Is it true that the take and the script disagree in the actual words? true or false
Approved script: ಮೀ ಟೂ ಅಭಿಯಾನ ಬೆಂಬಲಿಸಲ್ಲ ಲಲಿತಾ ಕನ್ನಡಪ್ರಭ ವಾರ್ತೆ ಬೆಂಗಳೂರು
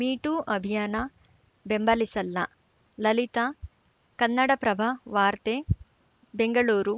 false